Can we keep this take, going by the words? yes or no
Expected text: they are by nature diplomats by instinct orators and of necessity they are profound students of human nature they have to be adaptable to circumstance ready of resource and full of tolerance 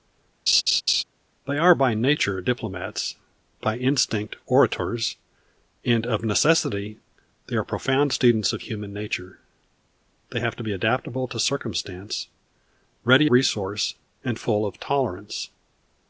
no